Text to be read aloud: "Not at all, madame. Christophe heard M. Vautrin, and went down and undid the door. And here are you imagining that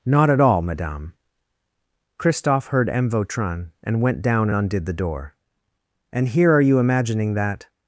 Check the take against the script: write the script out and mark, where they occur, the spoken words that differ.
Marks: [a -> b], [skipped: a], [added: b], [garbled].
"Not at all, madame. Christophe heard M. Vautrin, and went down [skipped: and] undid the door. And here are you imagining that